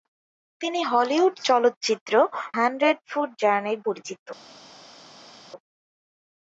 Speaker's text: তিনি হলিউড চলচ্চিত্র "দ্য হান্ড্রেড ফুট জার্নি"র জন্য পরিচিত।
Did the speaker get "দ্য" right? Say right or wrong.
wrong